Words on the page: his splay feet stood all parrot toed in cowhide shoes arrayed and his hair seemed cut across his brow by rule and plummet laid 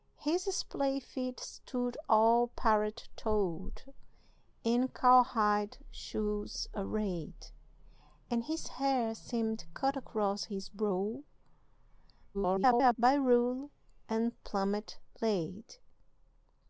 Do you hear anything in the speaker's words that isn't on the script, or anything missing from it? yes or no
yes